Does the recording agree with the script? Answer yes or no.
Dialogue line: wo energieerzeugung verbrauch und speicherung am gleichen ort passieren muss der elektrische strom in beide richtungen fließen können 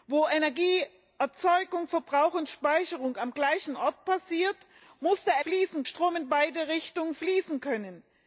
no